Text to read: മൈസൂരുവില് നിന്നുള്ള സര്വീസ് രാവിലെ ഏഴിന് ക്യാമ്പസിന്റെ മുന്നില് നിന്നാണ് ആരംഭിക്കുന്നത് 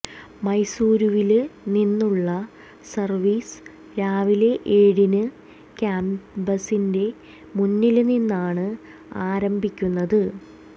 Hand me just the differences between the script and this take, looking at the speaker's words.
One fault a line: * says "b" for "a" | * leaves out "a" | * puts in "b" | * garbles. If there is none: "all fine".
all fine